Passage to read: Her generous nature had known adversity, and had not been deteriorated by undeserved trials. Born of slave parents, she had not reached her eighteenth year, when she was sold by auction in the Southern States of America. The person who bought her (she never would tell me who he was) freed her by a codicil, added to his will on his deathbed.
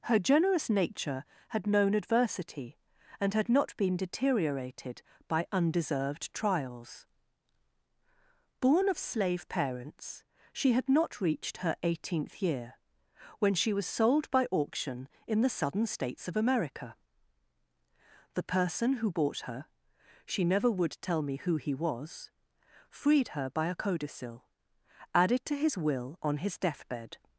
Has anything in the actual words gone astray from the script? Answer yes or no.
no